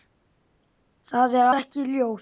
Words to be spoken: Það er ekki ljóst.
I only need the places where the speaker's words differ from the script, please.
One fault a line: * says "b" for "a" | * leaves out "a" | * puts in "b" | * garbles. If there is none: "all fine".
all fine